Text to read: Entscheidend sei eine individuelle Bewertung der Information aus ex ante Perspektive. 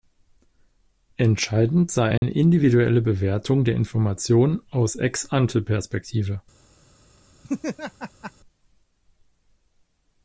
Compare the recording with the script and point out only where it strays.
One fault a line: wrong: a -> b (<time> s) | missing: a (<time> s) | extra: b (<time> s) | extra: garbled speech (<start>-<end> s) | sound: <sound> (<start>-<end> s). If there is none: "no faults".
sound: dropout (2.2-2.2 s)
sound: laugh (7.4-8.3 s)